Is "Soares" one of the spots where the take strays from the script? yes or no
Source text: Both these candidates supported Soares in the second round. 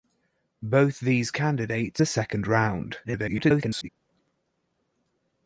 yes